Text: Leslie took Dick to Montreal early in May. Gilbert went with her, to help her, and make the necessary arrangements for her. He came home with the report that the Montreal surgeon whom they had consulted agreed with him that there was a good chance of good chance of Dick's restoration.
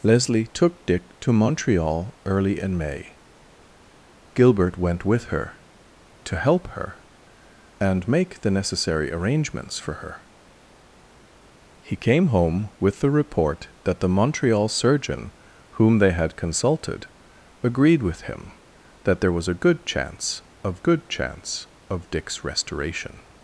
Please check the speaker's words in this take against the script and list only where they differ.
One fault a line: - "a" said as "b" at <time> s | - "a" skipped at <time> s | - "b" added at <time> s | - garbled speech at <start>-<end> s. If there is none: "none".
none